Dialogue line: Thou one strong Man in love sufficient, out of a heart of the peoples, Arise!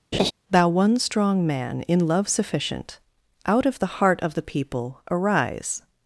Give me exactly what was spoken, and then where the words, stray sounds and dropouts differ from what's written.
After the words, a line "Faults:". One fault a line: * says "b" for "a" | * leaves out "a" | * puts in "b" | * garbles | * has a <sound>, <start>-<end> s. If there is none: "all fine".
Thou one strong Man in love sufficient, out of the heart of the people, Arise!
Faults:
* has a laugh, 0.1-0.3 s
* says "the" for "a"
* says "people" for "peoples"